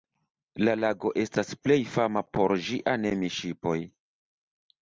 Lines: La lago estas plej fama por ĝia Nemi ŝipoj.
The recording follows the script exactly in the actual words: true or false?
true